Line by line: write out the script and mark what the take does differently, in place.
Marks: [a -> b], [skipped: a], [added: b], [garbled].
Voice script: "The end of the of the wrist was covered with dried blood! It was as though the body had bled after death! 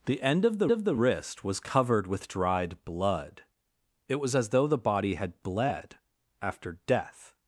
"The end of the of the wrist was covered with dried blood! It was as though the body had bled after death!